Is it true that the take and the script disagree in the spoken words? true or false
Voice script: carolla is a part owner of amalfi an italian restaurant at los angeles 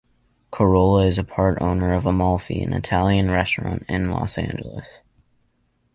true